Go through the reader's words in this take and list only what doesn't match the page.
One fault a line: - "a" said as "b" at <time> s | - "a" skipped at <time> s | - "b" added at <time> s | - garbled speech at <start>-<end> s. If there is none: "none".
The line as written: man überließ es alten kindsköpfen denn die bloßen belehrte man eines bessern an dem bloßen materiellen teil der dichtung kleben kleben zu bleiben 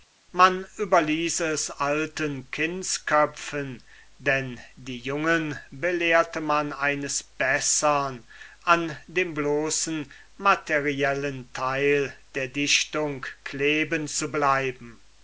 - "bloßen" said as "jungen" at 5.0 s
- "kleben" skipped at 14.1 s